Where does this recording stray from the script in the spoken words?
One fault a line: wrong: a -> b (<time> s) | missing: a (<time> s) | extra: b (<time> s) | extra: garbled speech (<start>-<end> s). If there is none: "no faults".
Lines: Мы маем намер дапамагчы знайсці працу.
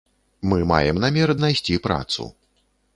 missing: дапамагчы (1.4 s)